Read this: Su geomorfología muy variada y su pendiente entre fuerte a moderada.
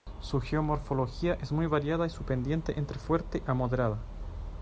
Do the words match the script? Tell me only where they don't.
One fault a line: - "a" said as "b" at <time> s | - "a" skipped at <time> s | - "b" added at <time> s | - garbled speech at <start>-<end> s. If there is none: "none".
- "es" added at 1.4 s